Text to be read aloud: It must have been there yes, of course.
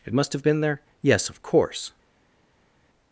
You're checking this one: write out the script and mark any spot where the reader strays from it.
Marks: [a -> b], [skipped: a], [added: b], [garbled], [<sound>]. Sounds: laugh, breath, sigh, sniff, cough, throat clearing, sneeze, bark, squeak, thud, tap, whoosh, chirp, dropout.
It must have been there yes, of course.